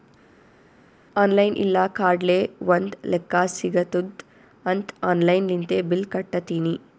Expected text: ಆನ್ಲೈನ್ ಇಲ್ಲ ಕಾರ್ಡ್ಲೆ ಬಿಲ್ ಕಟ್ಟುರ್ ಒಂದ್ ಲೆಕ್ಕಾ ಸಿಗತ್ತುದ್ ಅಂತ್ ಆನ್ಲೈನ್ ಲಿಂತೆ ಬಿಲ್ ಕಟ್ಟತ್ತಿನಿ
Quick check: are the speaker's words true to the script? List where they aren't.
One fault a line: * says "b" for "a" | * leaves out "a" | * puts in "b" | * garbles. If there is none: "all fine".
* leaves out "ಬಿಲ್ ಕಟ್ಟುರ್"